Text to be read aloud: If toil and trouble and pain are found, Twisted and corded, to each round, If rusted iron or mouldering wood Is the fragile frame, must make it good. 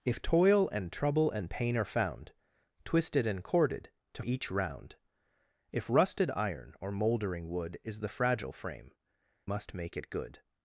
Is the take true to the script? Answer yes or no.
yes